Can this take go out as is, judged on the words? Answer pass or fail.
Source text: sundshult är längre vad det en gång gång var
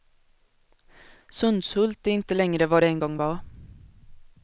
fail